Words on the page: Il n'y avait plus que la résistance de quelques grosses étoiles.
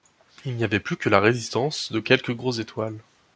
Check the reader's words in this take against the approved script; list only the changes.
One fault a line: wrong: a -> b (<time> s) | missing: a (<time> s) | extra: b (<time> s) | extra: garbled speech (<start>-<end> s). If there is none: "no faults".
no faults